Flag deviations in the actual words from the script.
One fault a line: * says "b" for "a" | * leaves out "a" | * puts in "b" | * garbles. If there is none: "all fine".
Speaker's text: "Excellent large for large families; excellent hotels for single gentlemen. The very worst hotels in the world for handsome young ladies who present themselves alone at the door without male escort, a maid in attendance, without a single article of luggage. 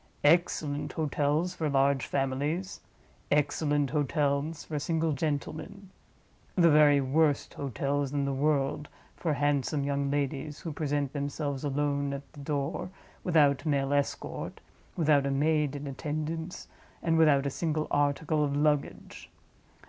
* says "hotels" for "large"
* puts in "without"
* puts in "and"